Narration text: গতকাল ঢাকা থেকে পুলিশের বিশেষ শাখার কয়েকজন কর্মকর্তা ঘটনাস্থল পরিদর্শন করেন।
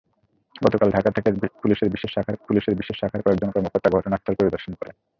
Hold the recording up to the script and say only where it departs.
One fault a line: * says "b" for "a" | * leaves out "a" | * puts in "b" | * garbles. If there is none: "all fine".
* puts in "পুলিশের বিশেষ শাখার"